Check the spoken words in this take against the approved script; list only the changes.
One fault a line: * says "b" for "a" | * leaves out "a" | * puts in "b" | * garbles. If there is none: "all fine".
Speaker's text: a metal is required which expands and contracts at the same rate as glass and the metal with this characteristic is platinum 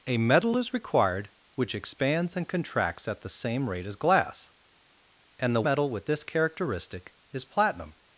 all fine